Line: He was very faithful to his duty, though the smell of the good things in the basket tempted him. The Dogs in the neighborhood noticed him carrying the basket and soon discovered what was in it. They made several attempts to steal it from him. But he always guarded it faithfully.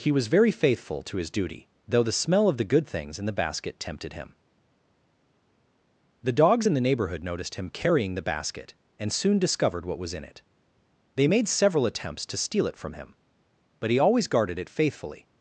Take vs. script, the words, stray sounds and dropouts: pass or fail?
pass